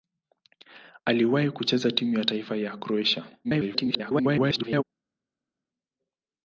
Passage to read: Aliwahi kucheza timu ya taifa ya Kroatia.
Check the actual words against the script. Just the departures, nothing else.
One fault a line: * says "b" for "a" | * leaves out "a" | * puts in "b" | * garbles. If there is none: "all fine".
* garbles